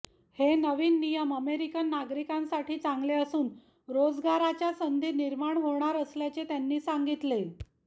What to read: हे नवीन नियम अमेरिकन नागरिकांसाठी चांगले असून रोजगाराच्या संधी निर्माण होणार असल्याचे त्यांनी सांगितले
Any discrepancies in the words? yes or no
no